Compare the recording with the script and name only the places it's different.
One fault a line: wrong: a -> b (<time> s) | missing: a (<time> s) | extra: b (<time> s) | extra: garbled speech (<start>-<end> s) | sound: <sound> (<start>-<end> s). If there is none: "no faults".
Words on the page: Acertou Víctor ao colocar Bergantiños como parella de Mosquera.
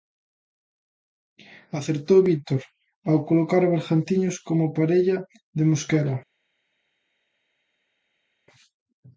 no faults